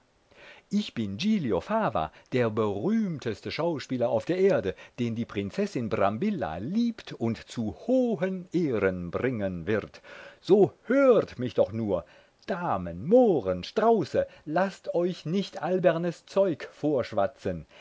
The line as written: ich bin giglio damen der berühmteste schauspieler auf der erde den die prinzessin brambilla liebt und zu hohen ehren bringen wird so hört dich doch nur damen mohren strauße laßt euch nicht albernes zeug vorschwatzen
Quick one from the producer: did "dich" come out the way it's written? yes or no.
no